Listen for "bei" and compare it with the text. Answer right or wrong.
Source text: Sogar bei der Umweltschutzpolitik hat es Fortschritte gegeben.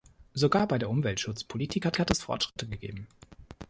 right